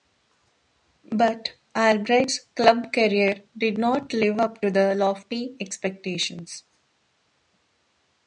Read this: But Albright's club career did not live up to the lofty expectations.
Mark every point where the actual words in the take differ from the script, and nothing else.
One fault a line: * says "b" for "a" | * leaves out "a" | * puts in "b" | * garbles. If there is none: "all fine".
all fine